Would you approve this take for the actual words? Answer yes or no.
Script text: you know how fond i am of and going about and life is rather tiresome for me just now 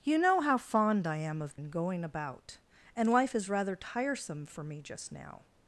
yes